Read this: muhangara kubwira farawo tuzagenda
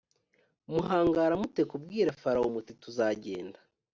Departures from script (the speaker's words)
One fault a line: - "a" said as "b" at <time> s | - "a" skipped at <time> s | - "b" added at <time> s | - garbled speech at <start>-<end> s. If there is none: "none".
- "mute" added at 1.4 s
- "muti" added at 2.5 s